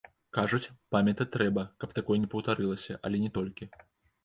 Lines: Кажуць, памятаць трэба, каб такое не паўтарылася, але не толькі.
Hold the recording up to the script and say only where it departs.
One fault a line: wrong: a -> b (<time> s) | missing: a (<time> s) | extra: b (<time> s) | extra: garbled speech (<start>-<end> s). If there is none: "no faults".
no faults